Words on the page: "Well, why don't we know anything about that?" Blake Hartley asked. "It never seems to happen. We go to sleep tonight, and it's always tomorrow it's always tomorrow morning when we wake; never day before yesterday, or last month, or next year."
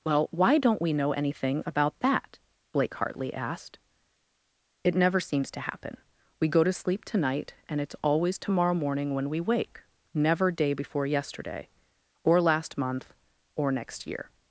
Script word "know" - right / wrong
right